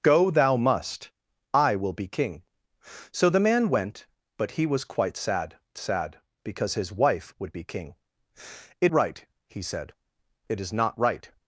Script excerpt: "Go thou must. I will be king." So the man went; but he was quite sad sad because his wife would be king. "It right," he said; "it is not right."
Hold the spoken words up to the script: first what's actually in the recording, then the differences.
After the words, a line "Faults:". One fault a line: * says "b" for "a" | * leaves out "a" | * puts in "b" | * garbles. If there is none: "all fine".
"Go thou must. I will be king." So the man went; but he was quite sad sad because his wife would be king. "It right," he said; "it is not right."
Faults:
all fine